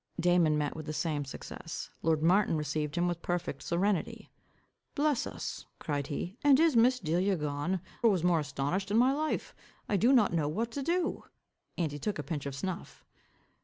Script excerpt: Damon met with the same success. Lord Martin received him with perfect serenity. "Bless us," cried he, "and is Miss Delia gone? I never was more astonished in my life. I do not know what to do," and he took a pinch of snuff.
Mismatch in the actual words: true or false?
true